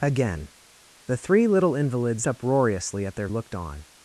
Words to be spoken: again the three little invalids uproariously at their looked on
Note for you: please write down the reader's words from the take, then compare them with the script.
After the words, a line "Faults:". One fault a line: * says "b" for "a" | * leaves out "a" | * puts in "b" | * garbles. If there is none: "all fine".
again the three little invalids uproariously at their looked on
Faults:
all fine